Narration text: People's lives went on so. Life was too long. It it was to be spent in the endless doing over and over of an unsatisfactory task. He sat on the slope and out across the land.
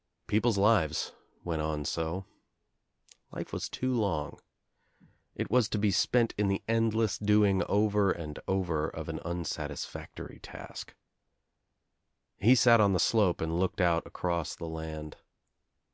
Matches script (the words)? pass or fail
fail